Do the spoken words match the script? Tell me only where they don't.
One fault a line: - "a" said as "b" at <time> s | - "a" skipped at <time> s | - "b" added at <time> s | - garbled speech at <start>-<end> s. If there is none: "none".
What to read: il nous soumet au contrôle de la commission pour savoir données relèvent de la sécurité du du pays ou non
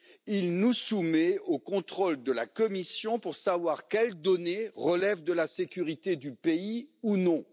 - "quelles" added at 3.9 s
- "du" skipped at 6.3 s